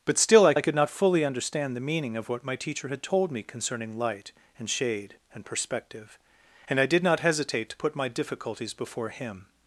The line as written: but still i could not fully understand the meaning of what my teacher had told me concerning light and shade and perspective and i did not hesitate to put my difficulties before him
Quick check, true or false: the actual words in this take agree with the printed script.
false